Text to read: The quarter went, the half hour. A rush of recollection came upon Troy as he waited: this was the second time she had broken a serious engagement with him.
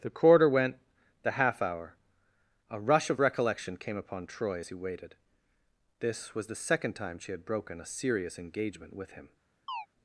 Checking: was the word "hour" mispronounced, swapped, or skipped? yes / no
no